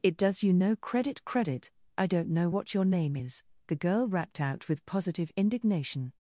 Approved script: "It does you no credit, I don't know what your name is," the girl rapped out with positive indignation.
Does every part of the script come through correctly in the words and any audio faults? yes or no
no